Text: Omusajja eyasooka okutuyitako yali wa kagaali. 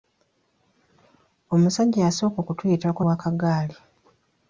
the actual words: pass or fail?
fail